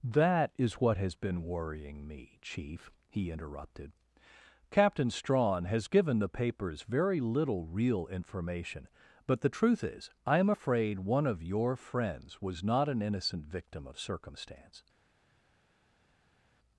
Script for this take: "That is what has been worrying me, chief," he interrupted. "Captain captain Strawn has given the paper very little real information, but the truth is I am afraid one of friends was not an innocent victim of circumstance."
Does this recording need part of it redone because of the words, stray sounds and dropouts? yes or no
yes